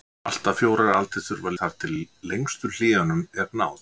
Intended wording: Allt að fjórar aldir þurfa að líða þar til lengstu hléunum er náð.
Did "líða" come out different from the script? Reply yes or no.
yes